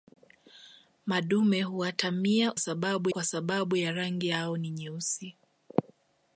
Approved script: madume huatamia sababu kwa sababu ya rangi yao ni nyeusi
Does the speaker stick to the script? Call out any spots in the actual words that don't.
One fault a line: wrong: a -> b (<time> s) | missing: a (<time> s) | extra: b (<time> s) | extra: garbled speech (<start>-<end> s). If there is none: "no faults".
no faults